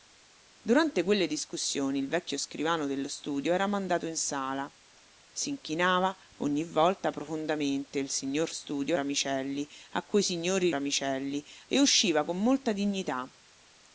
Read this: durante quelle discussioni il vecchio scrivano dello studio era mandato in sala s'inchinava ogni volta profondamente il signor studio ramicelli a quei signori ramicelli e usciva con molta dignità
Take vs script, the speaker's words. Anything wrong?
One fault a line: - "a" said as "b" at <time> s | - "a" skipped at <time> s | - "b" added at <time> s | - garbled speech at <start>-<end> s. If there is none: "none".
none